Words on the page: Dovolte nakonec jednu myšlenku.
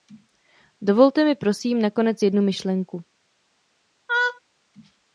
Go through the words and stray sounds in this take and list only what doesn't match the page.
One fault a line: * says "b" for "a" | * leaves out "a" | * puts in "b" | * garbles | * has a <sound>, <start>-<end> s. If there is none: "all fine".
* puts in "mi prosím"
* has a laugh, 4.1-4.4 s